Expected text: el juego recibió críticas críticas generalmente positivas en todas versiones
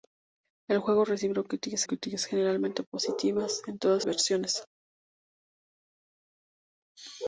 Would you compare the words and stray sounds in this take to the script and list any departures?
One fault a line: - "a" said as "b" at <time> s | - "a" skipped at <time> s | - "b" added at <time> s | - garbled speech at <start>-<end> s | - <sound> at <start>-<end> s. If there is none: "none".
none